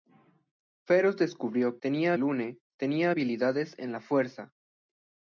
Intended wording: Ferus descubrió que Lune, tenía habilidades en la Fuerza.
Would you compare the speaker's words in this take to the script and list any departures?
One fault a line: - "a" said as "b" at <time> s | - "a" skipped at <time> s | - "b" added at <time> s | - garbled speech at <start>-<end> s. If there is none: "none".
- "que" said as "tenía" at 1.8 s